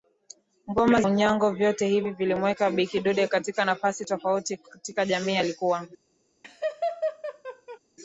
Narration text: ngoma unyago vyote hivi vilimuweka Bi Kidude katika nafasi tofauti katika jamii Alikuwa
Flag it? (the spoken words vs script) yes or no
no